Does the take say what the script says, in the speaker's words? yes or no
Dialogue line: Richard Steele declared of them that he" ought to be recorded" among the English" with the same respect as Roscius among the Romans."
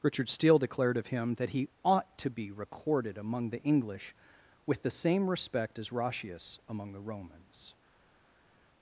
no